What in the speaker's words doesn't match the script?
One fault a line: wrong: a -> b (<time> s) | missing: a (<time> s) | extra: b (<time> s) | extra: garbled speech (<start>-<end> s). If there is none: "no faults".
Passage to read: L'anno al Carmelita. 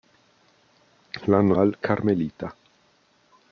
no faults